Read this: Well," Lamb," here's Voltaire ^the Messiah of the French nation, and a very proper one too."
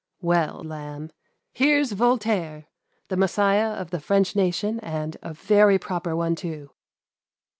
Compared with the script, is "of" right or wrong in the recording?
right